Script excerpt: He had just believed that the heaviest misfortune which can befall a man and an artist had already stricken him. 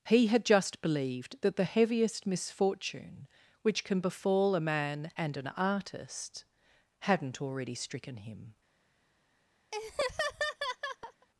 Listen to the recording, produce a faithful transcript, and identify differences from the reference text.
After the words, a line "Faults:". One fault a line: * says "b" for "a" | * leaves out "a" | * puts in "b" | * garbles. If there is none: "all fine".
He had just believed that the heaviest misfortune which can befall a man and an artist hadn't already stricken him.
Faults:
* says "hadn't" for "had"